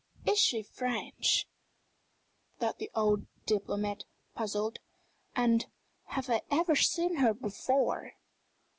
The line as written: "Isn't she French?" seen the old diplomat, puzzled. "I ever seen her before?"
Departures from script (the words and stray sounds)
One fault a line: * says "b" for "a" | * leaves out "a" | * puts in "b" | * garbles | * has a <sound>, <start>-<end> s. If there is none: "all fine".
* says "Is" for "Isn't"
* says "thought" for "seen"
* puts in "And have"